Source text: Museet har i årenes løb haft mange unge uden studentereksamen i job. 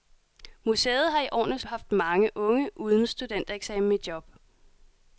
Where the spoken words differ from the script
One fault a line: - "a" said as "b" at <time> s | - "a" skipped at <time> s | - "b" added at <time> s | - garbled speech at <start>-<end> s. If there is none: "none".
- "løb" skipped at 1.6 s